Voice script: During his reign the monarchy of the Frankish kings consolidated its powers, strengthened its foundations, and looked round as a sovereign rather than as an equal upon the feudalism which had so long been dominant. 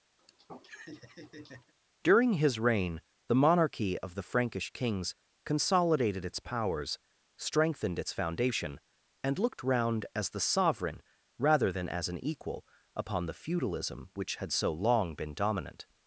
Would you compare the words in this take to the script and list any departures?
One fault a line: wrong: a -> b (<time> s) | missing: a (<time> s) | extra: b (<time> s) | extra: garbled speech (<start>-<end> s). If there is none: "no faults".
wrong: foundations -> foundation (8.1 s)
wrong: a -> the (10.3 s)